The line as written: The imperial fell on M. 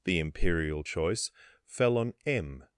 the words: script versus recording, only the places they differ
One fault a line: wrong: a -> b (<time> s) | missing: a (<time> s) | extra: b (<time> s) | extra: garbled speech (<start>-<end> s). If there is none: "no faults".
extra: choice (0.8 s)